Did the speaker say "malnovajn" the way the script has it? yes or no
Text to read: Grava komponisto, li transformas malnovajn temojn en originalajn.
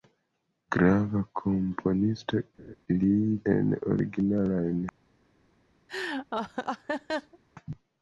no